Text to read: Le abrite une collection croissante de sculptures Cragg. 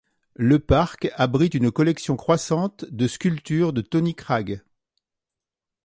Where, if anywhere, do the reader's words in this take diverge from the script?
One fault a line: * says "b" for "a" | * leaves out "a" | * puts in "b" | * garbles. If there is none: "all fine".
* puts in "parc"
* puts in "de Tony"